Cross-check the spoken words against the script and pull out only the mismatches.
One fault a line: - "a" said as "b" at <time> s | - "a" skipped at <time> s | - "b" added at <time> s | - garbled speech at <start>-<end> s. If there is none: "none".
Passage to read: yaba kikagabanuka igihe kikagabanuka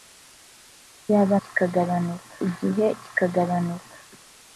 none